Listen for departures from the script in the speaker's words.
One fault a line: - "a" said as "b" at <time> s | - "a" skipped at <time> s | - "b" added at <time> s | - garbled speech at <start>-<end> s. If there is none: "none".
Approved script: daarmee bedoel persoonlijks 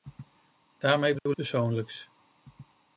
none